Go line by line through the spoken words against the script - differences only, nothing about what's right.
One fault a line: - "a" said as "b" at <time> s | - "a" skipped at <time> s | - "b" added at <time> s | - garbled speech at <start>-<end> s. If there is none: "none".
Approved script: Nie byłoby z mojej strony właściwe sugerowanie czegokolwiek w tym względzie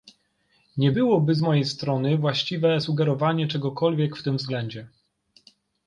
none